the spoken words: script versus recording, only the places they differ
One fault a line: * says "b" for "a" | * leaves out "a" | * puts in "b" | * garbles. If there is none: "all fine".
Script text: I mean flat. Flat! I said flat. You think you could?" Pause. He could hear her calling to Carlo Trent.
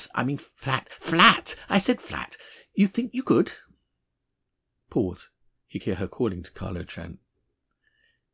* leaves out "could"